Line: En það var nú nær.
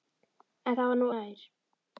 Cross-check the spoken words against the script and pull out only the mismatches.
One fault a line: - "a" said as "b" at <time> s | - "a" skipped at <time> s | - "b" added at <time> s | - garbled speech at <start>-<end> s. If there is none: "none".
none